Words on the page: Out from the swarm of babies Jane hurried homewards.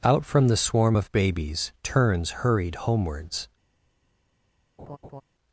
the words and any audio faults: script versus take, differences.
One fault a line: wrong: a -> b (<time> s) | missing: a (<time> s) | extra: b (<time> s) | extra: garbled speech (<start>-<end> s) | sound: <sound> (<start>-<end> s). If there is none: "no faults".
wrong: Jane -> Turns (1.8 s)
sound: laugh (4.8-5.2 s)